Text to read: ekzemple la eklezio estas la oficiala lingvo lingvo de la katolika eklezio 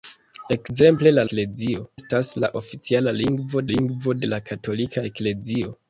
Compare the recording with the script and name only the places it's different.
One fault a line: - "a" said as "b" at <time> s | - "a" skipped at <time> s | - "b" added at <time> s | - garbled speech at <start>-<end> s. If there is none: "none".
none